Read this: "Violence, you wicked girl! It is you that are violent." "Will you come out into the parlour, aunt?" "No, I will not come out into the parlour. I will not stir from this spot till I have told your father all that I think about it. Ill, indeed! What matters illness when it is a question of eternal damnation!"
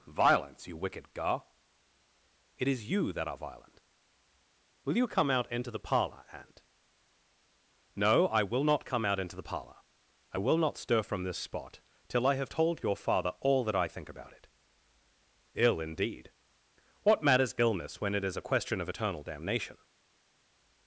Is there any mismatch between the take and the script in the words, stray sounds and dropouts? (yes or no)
yes